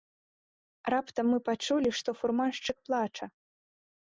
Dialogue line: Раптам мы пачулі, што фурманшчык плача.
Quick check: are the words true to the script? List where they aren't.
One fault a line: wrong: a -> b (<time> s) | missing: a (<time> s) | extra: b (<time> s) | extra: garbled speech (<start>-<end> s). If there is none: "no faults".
no faults